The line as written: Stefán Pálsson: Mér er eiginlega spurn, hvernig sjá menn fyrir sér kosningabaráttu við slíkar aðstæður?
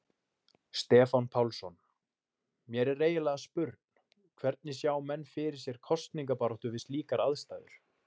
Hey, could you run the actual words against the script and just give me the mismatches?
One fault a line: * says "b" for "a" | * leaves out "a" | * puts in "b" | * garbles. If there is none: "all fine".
all fine